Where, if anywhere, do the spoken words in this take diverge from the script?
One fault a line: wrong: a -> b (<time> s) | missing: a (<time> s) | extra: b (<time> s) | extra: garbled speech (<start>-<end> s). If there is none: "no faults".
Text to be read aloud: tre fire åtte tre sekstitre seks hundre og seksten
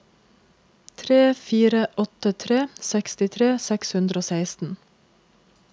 no faults